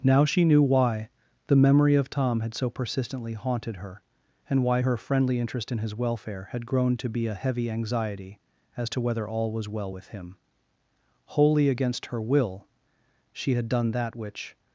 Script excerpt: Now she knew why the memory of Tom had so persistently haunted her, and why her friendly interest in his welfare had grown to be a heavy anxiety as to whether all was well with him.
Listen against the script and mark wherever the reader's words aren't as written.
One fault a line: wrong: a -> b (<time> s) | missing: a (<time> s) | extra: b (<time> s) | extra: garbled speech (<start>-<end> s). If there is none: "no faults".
extra: Wholly against her will she had done that which (11.3 s)